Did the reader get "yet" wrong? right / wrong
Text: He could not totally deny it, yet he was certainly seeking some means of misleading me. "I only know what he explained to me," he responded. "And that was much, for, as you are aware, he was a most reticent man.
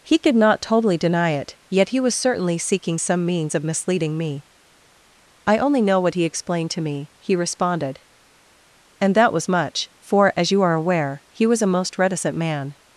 right